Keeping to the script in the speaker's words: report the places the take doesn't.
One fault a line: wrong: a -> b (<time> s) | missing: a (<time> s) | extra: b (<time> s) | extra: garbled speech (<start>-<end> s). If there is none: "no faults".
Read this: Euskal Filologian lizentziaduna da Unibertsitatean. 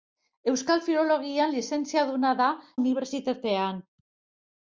no faults